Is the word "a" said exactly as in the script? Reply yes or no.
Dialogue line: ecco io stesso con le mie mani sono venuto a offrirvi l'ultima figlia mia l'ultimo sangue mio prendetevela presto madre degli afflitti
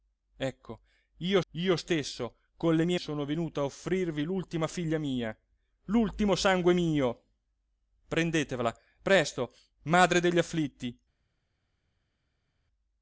yes